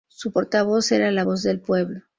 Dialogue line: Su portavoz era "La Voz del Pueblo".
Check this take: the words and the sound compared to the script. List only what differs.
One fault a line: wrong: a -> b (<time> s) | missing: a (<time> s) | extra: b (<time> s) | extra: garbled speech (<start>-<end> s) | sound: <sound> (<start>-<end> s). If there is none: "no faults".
no faults